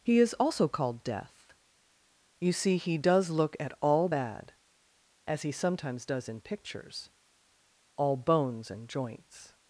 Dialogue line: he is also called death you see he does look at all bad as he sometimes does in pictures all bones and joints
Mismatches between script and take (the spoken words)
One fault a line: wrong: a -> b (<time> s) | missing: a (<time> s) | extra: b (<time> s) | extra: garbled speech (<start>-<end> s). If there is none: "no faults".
no faults